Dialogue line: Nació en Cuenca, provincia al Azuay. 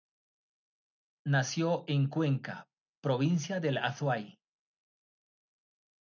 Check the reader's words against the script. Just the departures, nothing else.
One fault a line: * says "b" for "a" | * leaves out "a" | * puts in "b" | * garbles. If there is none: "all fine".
* says "del" for "al"